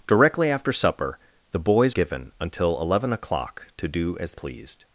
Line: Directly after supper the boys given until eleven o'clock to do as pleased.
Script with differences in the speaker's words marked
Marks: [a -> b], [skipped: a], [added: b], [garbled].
Directly after supper the boys given until eleven o'clock to do as pleased.